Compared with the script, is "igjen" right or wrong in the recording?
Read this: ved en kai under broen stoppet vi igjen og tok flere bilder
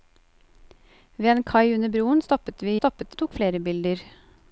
wrong